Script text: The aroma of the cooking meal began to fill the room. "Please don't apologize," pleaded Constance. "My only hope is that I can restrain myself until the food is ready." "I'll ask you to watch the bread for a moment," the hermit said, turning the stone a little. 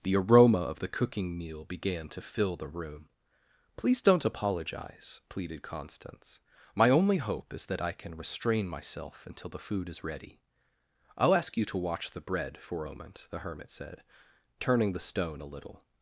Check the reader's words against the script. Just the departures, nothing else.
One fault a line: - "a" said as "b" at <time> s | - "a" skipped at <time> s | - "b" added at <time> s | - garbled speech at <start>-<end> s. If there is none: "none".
- "a" skipped at 12.9 s